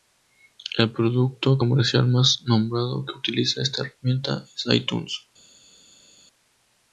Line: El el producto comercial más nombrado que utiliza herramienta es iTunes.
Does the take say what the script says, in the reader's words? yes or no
no